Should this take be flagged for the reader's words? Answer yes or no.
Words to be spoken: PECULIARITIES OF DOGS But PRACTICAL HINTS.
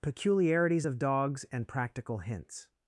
yes